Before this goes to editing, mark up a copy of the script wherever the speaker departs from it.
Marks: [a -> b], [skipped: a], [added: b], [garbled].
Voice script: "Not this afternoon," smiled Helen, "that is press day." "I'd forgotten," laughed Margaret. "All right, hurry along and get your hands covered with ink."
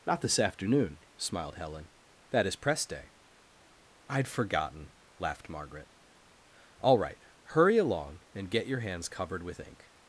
"Not this afternoon," smiled Helen, "that is press day." "I'd forgotten," laughed Margaret. "All right, hurry along and get your hands covered with ink."